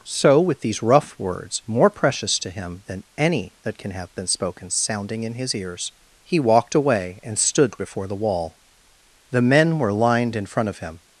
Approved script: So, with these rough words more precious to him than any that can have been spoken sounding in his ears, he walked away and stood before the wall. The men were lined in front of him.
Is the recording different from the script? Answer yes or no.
no